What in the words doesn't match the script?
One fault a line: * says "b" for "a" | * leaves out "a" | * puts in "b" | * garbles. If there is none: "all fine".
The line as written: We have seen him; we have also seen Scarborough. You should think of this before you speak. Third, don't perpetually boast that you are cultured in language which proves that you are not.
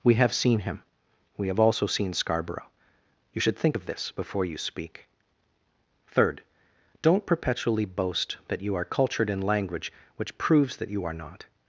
all fine